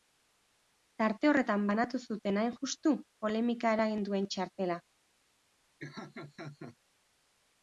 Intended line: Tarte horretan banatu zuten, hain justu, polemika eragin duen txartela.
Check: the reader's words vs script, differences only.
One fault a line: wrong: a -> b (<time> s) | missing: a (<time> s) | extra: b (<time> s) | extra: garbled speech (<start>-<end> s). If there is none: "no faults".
no faults